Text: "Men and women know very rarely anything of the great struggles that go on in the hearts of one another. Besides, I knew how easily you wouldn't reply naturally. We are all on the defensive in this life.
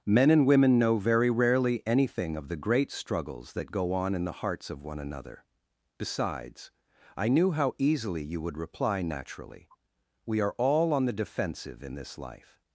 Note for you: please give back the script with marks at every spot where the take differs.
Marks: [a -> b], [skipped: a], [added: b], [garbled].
"Men and women know very rarely anything of the great struggles that go on in the hearts of one another. Besides, I knew how easily you [wouldn't -> would] reply naturally. We are all on the defensive in this life.